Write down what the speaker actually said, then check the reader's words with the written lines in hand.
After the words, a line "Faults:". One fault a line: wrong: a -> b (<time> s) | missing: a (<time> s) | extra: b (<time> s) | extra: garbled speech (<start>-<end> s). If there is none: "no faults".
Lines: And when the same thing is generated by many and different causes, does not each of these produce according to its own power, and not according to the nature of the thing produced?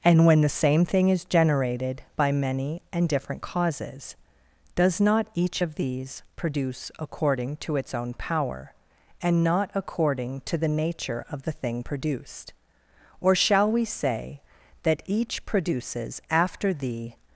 And when the same thing is generated by many and different causes, does not each of these produce according to its own power, and not according to the nature of the thing produced? Or shall we say, that each produces after the
Faults:
extra: Or shall we say that each produces after the (13.2 s)